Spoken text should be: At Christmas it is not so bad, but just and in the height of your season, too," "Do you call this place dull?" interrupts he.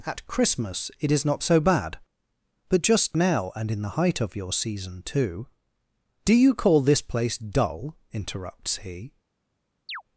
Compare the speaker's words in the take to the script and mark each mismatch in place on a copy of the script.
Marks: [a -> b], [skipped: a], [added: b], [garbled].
At Christmas it is not so bad, but just [added: now] and in the height of your season, too," "Do you call this place dull?" interrupts he.